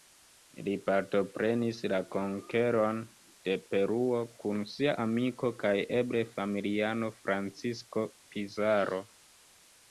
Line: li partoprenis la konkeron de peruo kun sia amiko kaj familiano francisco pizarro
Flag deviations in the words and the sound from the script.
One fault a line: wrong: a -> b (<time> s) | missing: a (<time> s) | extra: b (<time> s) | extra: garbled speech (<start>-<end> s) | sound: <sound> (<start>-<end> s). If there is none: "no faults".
extra: eble (6.0 s)